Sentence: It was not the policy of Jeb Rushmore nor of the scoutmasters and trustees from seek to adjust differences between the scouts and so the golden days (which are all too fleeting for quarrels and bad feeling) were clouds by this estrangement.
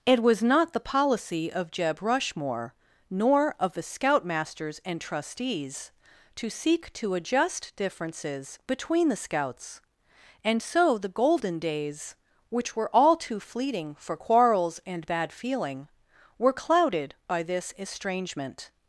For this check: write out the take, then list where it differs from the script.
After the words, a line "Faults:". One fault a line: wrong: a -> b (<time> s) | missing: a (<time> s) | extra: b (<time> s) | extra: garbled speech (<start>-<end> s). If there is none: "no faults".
It was not the policy of Jeb Rushmore nor of the scoutmasters and trustees to seek to adjust differences between the scouts and so the golden days (which were all too fleeting for quarrels and bad feeling) were clouded by this estrangement.
Faults:
wrong: from -> to (6.3 s)
wrong: are -> were (12.8 s)
wrong: clouds -> clouded (16.5 s)